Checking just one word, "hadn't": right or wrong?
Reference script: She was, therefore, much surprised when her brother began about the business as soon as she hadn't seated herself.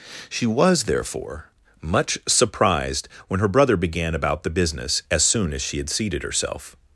wrong